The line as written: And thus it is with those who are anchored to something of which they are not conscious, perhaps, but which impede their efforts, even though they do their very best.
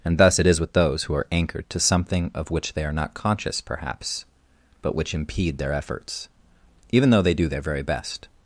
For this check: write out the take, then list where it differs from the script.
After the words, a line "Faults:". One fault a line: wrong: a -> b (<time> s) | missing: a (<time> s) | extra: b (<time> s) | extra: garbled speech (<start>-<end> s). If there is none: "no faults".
And thus it is with those who are anchored to something of which they are not conscious, perhaps, but which impede their efforts, even though they do their very best.
Faults:
no faults